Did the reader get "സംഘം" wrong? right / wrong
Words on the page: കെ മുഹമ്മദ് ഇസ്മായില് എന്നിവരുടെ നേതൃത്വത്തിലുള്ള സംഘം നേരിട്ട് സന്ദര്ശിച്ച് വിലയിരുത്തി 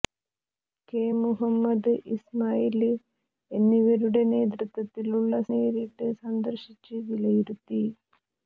wrong